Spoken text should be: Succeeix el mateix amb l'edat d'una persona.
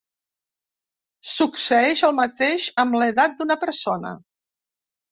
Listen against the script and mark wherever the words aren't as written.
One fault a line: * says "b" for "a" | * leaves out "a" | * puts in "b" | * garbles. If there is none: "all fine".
all fine